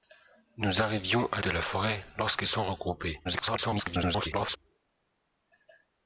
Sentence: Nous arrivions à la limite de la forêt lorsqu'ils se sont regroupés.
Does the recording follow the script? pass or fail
fail